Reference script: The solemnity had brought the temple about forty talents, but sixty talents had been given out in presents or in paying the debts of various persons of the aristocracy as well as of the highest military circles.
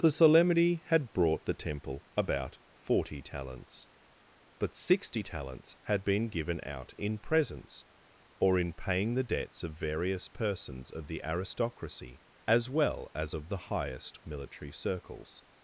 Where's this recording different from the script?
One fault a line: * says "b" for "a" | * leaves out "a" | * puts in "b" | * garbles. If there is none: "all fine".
all fine